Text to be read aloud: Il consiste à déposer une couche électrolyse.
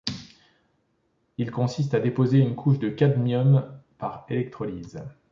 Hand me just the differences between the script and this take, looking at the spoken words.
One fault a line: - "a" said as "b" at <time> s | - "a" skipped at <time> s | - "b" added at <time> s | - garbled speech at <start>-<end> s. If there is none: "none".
- "de cadmium par" added at 2.8 s